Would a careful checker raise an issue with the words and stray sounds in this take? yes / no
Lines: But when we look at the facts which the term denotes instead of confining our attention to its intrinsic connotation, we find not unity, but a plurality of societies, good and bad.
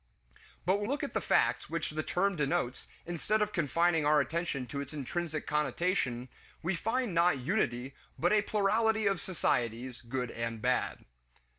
yes